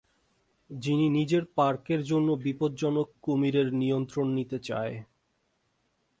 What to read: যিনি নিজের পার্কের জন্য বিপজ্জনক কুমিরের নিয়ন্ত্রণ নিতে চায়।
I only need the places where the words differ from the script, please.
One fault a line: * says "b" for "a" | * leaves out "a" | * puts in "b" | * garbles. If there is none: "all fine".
all fine